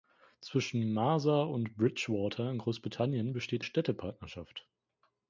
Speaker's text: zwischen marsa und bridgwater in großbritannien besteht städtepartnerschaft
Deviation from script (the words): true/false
false